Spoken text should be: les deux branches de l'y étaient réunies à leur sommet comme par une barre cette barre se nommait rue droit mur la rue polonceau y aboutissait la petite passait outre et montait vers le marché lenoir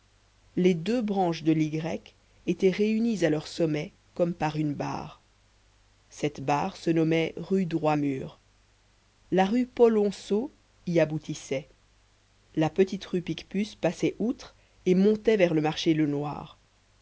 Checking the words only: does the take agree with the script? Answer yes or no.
no